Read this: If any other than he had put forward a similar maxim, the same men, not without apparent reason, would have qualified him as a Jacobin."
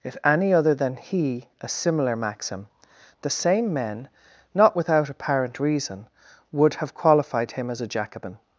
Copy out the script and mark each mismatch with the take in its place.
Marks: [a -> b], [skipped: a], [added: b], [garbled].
If any other than he [skipped: had put forward] a similar maxim, the same men, not without apparent reason, would have qualified him as a Jacobin."